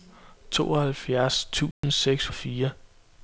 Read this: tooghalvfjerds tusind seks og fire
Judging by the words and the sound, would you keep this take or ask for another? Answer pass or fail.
fail